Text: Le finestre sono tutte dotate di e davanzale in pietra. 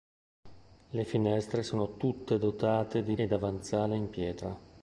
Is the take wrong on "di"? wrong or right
right